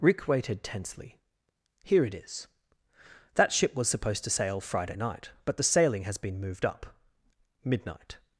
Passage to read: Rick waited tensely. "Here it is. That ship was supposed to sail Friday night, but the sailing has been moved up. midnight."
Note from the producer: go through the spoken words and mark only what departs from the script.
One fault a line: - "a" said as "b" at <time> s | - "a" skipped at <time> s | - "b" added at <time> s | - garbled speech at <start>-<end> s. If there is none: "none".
none